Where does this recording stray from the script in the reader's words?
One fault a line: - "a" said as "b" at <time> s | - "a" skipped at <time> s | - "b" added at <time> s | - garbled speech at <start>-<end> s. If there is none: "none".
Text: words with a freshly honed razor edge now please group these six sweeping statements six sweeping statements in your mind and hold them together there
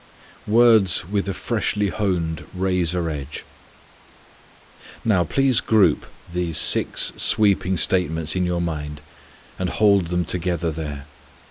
- "six sweeping statements" skipped at 8.3 s